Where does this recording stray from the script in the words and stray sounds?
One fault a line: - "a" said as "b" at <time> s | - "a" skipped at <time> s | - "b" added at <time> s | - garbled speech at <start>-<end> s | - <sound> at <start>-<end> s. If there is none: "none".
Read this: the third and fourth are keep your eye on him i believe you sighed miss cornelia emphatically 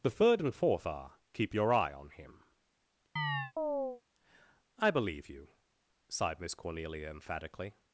- chirp at 3.2-4.0 s